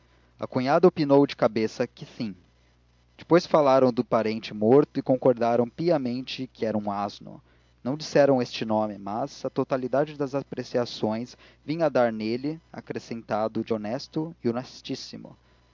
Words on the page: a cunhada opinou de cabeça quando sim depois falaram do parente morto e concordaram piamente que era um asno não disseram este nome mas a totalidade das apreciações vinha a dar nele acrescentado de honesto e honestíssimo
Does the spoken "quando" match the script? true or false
false